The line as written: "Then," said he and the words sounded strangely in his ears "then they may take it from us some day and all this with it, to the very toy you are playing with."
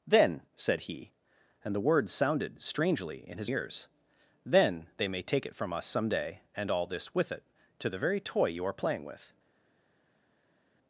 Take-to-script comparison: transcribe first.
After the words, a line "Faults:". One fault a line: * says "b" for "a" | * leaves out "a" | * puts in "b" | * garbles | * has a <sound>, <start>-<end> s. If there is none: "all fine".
"Then," said he and the words sounded strangely in his ears "then they may take it from us some day and all this with it, to the very toy you are playing with."
Faults:
all fine